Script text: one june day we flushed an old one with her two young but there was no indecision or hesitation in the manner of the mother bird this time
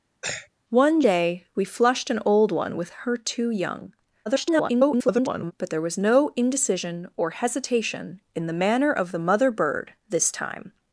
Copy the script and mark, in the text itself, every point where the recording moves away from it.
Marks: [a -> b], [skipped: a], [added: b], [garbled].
one [skipped: june] day we flushed an old one with her two young [garbled] but there was no indecision or hesitation in the manner of the mother bird this time